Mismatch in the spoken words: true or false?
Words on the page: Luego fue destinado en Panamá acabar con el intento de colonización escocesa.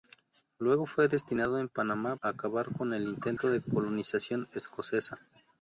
false